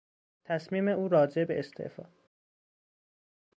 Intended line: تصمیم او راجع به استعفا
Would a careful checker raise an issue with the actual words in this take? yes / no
no